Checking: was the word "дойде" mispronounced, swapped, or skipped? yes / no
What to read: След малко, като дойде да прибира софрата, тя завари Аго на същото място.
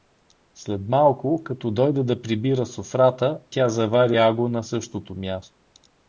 no